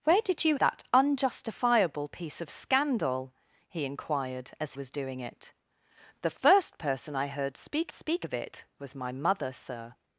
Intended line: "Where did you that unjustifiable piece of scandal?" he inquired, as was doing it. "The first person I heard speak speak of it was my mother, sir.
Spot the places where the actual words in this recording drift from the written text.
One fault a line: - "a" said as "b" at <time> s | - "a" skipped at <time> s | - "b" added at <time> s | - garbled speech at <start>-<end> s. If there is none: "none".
none